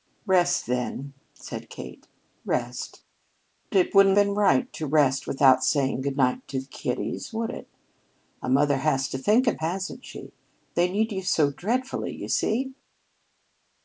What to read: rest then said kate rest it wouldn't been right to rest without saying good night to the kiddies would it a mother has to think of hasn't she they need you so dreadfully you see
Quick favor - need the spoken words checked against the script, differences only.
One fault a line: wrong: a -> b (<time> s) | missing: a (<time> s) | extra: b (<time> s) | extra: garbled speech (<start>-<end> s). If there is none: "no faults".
no faults